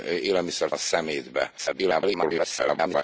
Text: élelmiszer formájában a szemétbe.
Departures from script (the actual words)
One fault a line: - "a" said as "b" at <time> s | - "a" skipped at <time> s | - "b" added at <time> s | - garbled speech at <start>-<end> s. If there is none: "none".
- "formájában" skipped at 0.7 s
- garbled speech at 1.6-3.0 s